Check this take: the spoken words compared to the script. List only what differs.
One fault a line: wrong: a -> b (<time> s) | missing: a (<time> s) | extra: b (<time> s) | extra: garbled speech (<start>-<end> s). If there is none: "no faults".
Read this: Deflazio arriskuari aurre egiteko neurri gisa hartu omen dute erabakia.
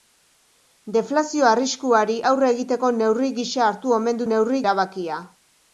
wrong: dute -> neurri (4.3 s)